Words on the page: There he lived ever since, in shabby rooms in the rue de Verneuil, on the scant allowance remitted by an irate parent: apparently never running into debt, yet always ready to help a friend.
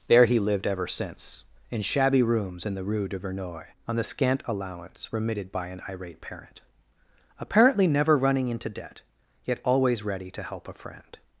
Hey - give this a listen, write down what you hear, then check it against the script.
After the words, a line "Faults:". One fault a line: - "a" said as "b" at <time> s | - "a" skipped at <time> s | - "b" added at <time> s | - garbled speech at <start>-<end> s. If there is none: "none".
There he lived ever since, in shabby rooms in the rue de Verneuil, on the scant allowance remitted by an irate parent: apparently never running into debt, yet always ready to help a friend.
Faults:
none